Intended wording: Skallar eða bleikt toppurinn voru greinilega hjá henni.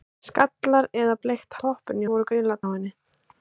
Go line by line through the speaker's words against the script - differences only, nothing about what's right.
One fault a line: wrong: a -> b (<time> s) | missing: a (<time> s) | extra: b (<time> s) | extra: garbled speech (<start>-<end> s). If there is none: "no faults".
no faults